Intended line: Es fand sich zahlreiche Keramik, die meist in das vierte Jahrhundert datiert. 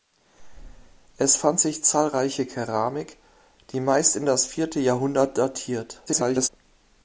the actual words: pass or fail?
fail